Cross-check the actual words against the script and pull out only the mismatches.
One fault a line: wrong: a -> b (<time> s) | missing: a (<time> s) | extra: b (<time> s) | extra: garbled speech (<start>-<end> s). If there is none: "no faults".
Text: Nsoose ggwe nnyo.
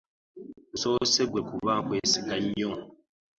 extra: kuba nkwesiga (1.5 s)